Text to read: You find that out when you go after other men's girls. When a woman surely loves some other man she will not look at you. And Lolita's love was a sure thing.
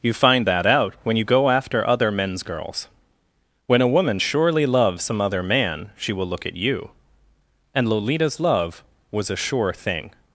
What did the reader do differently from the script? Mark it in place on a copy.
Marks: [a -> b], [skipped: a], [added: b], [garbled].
You find that out when you go after other men's girls. When a woman surely loves some other man she will [skipped: not] look at you. And Lolita's love was a sure thing.